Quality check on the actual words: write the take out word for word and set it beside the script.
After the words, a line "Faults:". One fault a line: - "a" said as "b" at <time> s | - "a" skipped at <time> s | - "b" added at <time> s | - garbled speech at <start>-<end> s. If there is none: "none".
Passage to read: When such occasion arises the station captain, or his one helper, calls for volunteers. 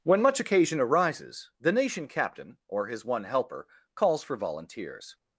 When much occasion arises the nation captain, or his one helper, calls for volunteers.
Faults:
- "such" said as "much" at 0.2 s
- "station" said as "nation" at 1.7 s